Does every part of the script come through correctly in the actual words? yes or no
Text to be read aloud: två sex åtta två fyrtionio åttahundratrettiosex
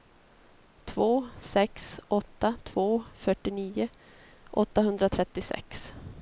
yes